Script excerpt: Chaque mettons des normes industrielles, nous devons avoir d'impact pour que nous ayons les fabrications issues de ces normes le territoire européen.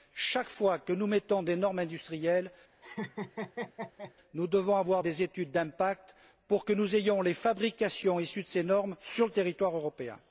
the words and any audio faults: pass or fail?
fail